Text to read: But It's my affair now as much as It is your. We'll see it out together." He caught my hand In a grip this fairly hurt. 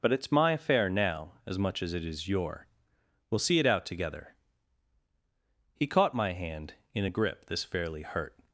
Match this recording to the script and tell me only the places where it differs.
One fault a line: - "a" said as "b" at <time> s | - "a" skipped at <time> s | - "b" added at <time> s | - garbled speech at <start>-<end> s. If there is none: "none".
none